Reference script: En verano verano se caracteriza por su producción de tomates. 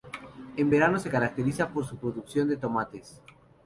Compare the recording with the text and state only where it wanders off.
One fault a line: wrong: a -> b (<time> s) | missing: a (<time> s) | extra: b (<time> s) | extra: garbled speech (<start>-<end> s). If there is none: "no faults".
missing: verano (1.0 s)